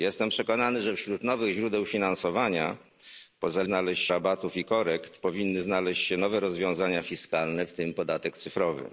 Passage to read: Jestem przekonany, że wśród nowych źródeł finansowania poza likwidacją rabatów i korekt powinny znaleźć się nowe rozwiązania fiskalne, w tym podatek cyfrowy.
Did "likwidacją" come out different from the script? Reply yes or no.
yes